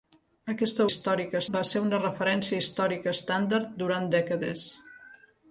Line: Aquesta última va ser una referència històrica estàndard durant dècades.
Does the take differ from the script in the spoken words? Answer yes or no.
yes